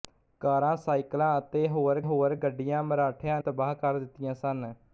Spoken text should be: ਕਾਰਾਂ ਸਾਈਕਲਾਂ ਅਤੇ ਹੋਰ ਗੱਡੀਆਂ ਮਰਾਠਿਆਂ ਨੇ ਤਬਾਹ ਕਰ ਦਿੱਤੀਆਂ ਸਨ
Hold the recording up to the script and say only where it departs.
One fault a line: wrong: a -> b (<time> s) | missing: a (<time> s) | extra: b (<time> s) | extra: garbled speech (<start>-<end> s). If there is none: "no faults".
extra: ਹੋਰ (2.0 s)
missing: ਨੇ (3.4 s)